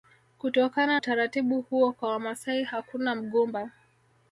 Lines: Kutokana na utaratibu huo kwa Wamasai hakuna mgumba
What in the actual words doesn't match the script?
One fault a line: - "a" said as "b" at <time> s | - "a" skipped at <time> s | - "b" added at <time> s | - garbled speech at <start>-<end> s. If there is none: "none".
- "na" skipped at 1.0 s